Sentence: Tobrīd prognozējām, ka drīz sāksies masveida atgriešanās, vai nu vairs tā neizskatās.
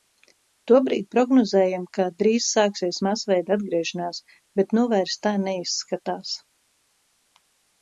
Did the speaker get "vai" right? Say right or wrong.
wrong